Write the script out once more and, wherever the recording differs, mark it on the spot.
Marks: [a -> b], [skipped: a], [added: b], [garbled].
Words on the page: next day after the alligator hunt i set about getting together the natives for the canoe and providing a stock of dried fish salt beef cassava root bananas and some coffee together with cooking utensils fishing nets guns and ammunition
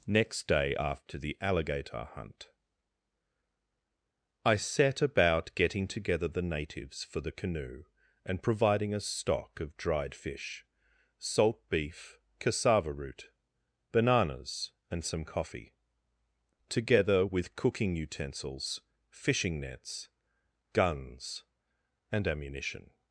next day after the alligator hunt i set about getting together the natives for the canoe and providing a stock of dried fish salt beef cassava root bananas and some coffee together with cooking utensils fishing nets guns and ammunition